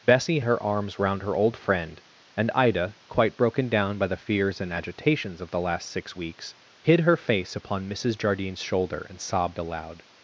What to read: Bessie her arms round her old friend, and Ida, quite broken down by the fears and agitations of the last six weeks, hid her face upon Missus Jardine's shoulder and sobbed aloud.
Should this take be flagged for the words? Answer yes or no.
no